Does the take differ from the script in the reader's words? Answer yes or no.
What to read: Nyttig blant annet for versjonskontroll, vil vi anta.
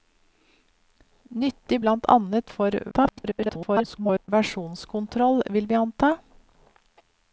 yes